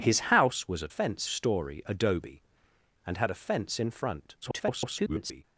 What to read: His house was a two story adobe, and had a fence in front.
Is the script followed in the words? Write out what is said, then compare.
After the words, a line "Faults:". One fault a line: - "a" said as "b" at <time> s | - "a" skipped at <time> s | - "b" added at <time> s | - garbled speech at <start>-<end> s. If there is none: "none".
His house was a fence story adobe, and had a fence in front. [garbled]
Faults:
- "two" said as "fence" at 0.9 s
- garbled speech at 4.4-5.4 s